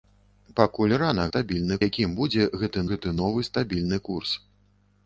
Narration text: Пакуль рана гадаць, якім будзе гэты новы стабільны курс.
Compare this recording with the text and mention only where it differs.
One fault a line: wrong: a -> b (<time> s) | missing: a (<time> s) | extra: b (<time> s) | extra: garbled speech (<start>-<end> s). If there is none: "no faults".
wrong: гадаць -> стабільны (1.3 s)
extra: гэты (2.9 s)